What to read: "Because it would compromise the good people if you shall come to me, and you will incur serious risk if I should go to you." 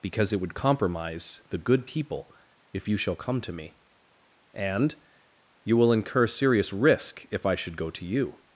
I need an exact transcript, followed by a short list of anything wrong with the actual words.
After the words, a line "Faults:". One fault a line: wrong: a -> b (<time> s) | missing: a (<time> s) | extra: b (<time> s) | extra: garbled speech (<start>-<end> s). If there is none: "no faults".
"Because it would compromise the good people if you shall come to me, and you will incur serious risk if I should go to you."
Faults:
no faults